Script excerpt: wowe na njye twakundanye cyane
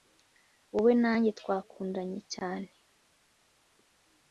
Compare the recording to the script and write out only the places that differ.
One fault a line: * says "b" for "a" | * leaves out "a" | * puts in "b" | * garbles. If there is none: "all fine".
all fine